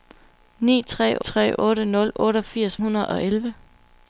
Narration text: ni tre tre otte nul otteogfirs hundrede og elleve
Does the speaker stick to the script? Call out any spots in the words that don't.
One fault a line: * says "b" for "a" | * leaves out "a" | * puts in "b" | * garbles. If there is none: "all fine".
all fine